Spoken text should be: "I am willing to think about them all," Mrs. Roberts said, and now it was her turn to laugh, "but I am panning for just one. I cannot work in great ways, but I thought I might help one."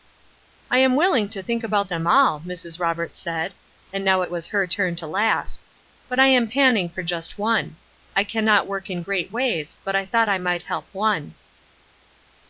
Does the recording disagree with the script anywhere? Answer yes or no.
no